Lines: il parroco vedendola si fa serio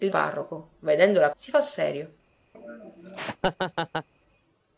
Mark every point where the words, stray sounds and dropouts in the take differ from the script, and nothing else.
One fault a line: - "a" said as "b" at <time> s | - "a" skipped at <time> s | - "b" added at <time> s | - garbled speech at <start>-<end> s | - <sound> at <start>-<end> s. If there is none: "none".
- laugh at 2.5-4.1 s